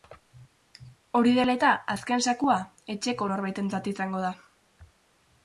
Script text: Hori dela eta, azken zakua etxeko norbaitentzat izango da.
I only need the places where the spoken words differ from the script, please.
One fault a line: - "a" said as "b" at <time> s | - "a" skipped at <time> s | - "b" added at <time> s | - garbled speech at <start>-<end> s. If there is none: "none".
none